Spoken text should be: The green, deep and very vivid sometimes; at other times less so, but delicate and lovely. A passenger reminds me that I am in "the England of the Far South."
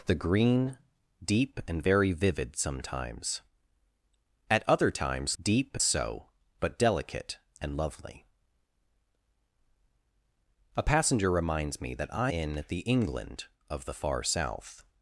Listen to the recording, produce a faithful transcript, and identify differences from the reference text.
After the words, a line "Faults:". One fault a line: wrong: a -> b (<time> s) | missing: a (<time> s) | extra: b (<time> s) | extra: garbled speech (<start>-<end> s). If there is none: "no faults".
The green, deep and very vivid sometimes; at other times deep so, but delicate and lovely. A passenger reminds me that I in "the England of the Far South."
Faults:
wrong: less -> deep (5.4 s)
missing: am (12.3 s)